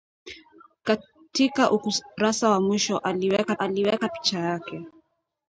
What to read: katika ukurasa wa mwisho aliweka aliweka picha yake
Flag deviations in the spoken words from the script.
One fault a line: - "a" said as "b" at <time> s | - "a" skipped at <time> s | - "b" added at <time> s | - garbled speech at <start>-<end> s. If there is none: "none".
none